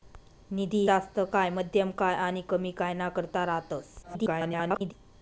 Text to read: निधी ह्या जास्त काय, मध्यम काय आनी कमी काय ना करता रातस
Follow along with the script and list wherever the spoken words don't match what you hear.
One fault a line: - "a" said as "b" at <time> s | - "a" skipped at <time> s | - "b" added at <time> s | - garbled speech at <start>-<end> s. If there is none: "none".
- "ह्या" skipped at 0.8 s
- garbled speech at 4.0-4.9 s